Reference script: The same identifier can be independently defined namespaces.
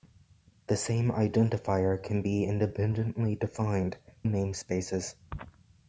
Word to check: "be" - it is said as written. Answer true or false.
true